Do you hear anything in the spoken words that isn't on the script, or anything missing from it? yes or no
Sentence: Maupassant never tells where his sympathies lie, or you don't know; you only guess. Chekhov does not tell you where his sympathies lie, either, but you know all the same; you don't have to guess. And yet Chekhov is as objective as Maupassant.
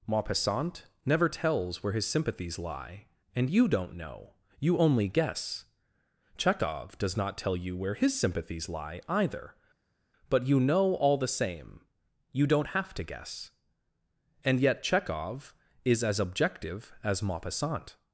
yes